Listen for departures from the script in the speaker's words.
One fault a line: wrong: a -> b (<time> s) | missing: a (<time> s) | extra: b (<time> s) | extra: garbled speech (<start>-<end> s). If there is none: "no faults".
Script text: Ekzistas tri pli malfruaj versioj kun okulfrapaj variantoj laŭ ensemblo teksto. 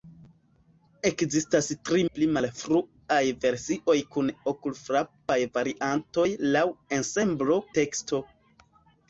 no faults